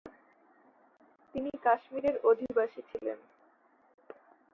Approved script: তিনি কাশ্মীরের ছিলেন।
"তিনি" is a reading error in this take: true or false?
false